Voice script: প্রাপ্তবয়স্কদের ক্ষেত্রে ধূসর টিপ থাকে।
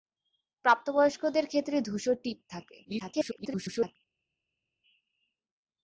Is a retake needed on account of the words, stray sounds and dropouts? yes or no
yes